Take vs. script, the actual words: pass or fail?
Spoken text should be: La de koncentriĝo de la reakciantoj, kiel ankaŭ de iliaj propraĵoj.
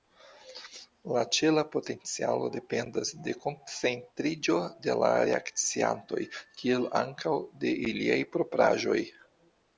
fail